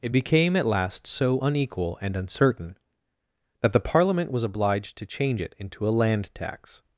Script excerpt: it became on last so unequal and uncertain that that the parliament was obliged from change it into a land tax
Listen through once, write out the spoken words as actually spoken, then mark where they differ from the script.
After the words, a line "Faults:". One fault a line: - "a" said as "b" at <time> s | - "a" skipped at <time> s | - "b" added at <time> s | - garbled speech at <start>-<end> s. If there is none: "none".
it became at last so unequal and uncertain that the parliament was obliged to change it into a land tax
Faults:
- "on" said as "at" at 0.5 s
- "that" skipped at 3.7 s
- "from" said as "to" at 5.0 s